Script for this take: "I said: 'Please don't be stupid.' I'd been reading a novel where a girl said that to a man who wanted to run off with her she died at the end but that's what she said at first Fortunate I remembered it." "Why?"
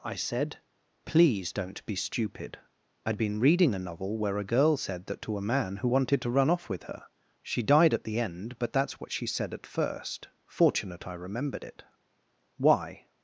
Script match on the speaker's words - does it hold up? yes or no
yes